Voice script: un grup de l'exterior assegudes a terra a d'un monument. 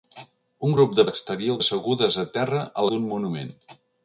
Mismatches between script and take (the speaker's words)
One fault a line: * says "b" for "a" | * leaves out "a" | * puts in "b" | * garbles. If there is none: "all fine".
all fine